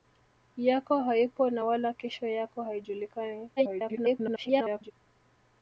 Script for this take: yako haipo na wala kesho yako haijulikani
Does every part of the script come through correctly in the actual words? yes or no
no